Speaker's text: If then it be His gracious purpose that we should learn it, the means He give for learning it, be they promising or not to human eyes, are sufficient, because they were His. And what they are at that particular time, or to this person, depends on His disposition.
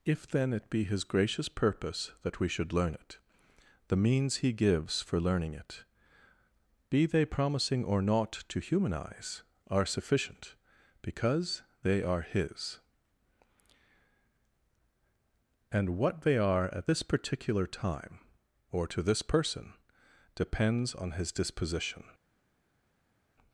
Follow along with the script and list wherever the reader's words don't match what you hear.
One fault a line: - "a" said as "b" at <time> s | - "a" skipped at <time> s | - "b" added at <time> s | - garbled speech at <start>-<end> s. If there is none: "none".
- "give" said as "gives" at 4.5 s
- "were" said as "are" at 12.0 s
- "that" said as "this" at 16.8 s